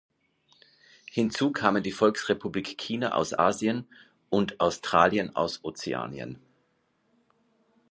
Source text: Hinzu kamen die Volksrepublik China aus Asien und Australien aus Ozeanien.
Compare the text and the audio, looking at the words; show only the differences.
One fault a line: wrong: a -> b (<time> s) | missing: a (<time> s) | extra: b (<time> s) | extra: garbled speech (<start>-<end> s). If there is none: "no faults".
no faults